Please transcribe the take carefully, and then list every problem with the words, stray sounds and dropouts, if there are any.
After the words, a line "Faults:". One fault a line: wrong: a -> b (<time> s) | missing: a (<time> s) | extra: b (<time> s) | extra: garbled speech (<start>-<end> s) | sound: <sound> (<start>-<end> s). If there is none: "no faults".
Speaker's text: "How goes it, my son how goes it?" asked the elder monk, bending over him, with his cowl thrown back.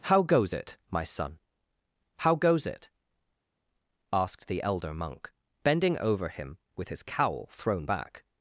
"How goes it, my son how goes it?" asked the elder monk, bending over him, with his cowl thrown back.
Faults:
no faults